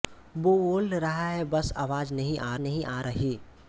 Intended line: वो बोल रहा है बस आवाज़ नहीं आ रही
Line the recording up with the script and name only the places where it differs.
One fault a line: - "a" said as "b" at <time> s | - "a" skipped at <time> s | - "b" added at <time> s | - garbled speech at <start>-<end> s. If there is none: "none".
- "नहीं आ" added at 2.6 s